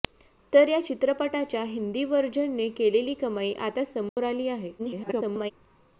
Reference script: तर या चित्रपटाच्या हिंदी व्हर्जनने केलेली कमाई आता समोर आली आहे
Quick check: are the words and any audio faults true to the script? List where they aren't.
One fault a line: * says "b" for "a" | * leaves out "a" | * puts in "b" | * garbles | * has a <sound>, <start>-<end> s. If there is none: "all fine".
* has a dropout, 4.1-4.2 s
* garbles